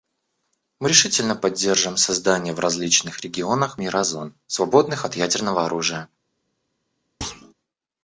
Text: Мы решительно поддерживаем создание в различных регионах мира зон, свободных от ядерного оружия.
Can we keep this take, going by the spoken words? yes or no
yes